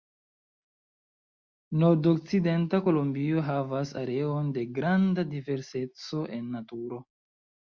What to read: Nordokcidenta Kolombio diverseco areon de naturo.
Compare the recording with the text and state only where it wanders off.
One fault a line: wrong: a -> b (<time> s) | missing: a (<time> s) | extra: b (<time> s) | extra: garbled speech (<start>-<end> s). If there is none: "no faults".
wrong: diverseco -> havas (3.5 s)
extra: granda diverseco en (4.8 s)